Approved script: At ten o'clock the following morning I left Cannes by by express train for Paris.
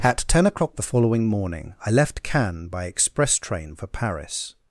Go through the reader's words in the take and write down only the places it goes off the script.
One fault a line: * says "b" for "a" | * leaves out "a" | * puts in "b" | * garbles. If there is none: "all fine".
* leaves out "by"